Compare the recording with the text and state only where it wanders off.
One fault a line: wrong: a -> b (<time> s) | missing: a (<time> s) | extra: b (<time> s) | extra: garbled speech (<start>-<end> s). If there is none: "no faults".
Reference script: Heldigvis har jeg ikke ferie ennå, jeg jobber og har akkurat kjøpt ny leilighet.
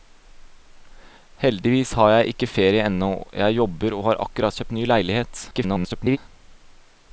extra: garbled speech (5.5-6.2 s)